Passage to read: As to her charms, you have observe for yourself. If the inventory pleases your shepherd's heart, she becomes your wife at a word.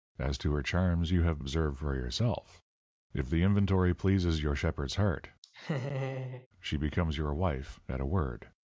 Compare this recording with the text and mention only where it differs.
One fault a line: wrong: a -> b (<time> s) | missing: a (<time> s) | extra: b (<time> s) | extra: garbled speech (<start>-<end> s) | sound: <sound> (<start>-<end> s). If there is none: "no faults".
sound: laugh (5.4-6.5 s)